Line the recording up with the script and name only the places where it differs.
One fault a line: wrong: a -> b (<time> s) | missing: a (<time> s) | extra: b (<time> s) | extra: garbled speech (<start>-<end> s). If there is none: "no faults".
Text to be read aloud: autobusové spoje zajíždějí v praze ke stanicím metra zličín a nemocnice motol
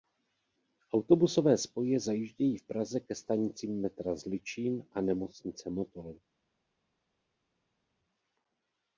no faults